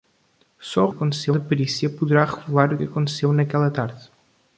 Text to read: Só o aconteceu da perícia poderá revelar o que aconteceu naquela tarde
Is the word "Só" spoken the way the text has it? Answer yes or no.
yes